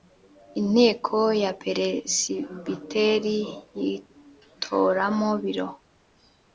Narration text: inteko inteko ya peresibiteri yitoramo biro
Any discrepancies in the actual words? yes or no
yes